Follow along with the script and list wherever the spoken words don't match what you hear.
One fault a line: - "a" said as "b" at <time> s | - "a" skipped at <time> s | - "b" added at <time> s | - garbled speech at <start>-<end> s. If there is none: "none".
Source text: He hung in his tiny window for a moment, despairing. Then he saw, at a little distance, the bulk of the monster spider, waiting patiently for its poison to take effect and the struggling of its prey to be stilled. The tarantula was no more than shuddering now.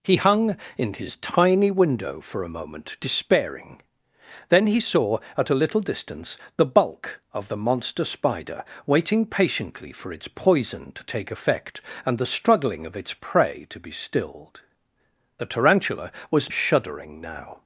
- "no more than" skipped at 16.5 s